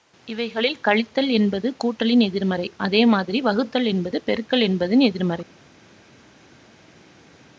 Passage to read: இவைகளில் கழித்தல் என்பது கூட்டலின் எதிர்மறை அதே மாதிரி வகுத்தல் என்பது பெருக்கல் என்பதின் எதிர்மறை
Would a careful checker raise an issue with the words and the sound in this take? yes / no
no